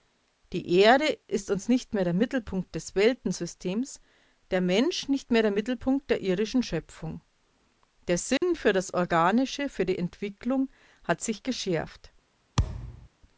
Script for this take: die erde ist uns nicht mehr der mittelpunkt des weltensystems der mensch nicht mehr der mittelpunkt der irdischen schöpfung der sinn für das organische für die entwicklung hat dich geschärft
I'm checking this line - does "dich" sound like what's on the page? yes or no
no